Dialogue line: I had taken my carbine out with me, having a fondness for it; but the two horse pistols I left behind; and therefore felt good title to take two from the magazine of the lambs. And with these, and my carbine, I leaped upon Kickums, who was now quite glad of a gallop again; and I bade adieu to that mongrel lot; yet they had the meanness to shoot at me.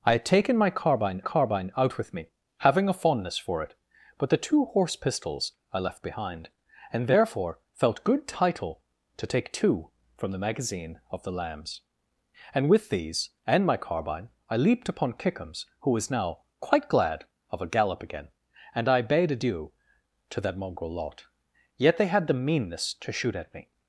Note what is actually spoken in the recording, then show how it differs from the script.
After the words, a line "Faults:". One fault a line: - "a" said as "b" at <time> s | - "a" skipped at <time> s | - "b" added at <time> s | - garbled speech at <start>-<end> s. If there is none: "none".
I had taken my carbine carbine out with me, having a fondness for it; but the two horse pistols I left behind; and therefore felt good title to take two from the magazine of the lambs. And with these, and my carbine, I leaped upon Kickums, who was now quite glad of a gallop again; and I bade adieu to that mongrel lot; yet they had the meanness to shoot at me.
Faults:
- "carbine" added at 1.2 s